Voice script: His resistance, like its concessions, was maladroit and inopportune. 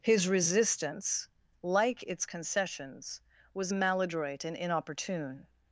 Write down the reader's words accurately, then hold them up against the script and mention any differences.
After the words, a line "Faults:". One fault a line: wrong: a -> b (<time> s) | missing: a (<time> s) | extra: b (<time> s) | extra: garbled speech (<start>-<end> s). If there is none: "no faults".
His resistance, like its concessions, was maladroit and inopportune.
Faults:
no faults